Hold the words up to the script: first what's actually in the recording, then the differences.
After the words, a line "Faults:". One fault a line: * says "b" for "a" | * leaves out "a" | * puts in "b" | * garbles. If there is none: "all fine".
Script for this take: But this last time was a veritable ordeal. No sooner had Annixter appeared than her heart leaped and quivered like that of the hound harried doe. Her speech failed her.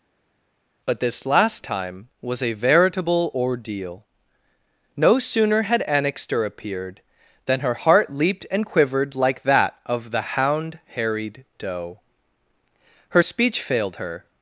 But this last time was a veritable ordeal. No sooner had Annixter appeared than her heart leaped and quivered like that of the hound harried doe. Her speech failed her.
Faults:
all fine